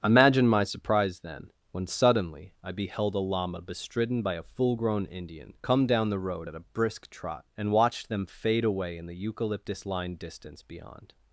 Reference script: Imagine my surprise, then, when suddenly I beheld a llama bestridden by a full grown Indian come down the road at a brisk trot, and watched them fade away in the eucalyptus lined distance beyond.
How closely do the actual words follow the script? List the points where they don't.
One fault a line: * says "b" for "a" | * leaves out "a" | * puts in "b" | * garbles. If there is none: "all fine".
all fine